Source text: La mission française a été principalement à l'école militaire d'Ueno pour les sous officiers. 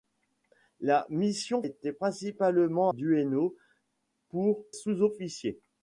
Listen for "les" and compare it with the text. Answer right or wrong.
wrong